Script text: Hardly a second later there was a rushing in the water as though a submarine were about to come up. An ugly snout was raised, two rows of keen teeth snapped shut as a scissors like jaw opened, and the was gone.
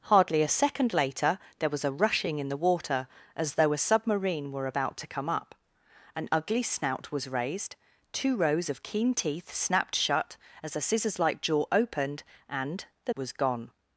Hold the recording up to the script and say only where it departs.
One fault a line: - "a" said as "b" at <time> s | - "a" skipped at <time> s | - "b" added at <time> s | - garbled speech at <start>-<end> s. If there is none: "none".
none